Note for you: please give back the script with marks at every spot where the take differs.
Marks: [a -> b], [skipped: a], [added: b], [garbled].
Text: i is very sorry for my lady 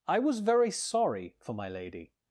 i [is -> was] very sorry for my lady